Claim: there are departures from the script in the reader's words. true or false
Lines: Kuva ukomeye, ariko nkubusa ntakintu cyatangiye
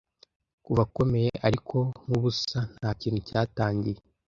false